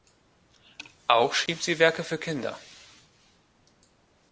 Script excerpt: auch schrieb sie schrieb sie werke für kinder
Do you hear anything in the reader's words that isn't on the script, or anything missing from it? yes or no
yes